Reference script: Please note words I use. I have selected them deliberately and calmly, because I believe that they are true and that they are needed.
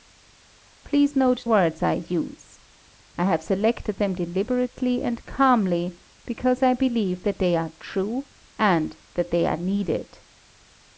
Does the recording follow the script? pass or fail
pass